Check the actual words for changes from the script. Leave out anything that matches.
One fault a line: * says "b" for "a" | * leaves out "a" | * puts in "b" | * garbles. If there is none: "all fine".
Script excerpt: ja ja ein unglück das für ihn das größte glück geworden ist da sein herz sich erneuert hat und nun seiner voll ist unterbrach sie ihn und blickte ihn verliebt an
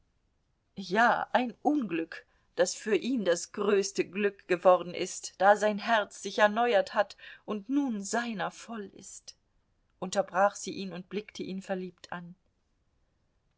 * leaves out "ja"